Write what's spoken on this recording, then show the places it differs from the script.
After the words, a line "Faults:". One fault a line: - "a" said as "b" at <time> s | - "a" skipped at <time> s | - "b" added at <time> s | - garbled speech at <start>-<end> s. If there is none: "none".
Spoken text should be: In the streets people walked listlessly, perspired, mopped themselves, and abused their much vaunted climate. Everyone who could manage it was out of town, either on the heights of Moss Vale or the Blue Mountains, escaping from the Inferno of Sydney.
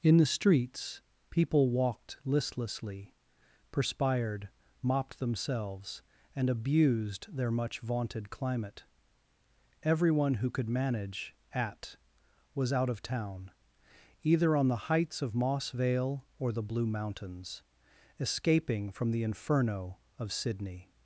In the streets people walked listlessly, perspired, mopped themselves, and abused their much vaunted climate. Everyone who could manage at was out of town, either on the heights of Moss Vale or the Blue Mountains, escaping from the Inferno of Sydney.
Faults:
- "it" said as "at" at 11.5 s